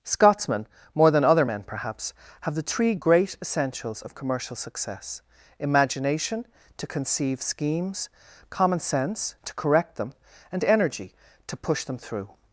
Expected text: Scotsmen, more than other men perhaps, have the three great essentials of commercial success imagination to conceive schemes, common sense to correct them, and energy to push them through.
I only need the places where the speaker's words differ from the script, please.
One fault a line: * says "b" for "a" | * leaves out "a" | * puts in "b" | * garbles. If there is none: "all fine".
all fine